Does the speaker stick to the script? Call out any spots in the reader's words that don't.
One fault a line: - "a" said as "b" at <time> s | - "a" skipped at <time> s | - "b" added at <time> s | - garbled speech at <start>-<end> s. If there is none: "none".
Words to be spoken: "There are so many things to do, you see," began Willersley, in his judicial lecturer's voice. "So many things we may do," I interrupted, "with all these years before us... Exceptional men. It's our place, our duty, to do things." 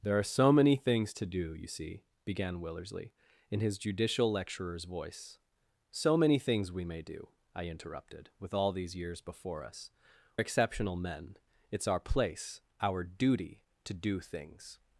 none